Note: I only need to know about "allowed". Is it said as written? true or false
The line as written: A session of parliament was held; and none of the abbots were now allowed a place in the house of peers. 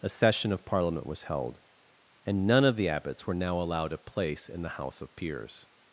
true